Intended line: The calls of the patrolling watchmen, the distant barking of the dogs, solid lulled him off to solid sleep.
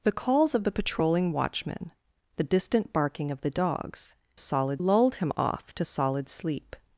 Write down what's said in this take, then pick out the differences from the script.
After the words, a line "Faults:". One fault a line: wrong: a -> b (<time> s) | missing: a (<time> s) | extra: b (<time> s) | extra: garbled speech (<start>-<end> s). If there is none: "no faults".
The calls of the patrolling watchmen, the distant barking of the dogs, solid lulled him off to solid sleep.
Faults:
no faults